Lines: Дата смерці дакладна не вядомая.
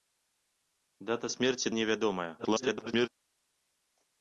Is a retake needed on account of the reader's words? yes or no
yes